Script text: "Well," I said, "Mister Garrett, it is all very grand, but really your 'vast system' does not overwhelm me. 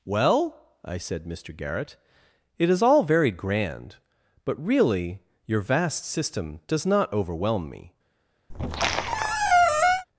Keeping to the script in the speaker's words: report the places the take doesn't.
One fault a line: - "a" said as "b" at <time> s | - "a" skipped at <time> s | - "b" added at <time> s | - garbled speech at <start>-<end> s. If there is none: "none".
none